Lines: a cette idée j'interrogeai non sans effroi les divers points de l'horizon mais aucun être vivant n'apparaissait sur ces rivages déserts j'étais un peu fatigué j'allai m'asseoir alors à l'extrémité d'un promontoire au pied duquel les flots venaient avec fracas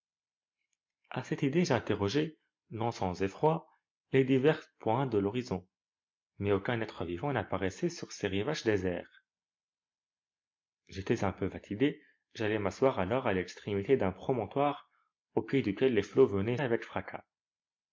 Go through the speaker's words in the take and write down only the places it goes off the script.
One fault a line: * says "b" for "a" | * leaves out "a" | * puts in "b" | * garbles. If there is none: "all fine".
all fine